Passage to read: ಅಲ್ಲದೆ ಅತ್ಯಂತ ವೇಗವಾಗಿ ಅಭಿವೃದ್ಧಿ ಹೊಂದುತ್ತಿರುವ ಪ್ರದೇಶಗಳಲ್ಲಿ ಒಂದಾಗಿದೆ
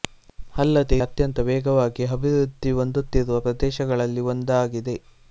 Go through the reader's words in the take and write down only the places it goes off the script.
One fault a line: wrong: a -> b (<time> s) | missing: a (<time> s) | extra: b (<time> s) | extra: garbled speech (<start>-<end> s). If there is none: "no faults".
no faults